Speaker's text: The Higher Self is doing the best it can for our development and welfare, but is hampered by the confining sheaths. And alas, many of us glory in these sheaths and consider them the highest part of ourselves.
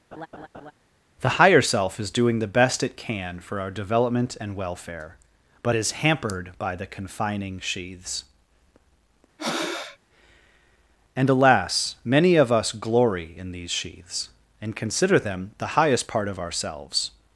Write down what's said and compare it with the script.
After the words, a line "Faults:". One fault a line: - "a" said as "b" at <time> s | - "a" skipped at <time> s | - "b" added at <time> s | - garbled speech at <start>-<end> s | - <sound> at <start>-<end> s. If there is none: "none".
The Higher Self is doing the best it can for our development and welfare, but is hampered by the confining sheaths. And alas, many of us glory in these sheaths and consider them the highest part of ourselves.
Faults:
- laugh at 0.1-0.7 s
- breath at 9.4-10.0 s